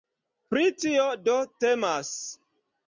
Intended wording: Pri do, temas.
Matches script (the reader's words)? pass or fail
fail